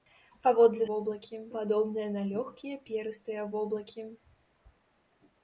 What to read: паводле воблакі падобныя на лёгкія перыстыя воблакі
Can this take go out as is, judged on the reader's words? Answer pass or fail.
pass